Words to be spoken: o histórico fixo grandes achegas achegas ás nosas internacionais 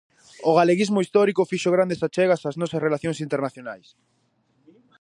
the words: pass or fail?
fail